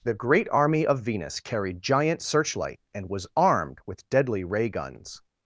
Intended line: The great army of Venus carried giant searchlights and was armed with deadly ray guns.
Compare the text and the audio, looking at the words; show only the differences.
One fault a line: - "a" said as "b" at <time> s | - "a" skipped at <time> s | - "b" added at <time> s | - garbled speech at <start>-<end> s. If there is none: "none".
- "searchlights" said as "searchlight" at 2.2 s